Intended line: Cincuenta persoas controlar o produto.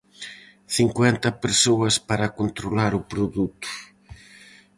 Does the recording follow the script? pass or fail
fail